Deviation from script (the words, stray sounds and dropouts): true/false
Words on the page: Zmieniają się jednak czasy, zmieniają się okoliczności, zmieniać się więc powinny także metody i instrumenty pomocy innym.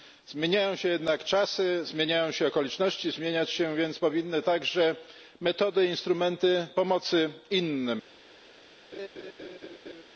true